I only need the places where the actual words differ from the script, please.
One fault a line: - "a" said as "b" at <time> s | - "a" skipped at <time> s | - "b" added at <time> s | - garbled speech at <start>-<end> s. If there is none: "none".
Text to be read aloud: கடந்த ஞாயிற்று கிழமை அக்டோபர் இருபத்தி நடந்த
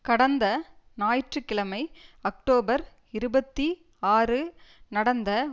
- "ஆறு" added at 4.1 s